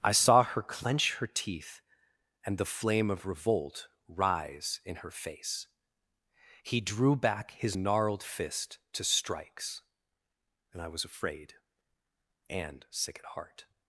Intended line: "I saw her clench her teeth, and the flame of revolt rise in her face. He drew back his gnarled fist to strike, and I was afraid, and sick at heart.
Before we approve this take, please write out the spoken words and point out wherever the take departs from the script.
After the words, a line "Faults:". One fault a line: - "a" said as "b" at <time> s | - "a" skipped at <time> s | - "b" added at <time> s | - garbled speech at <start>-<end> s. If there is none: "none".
"I saw her clench her teeth, and the flame of revolt rise in her face. He drew back his gnarled fist to strikes, and I was afraid, and sick at heart.
Faults:
- "strike" said as "strikes" at 9.0 s